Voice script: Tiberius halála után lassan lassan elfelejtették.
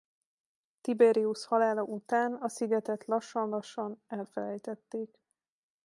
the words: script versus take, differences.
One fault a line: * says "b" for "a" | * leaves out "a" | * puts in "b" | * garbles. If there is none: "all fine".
* puts in "a szigetet"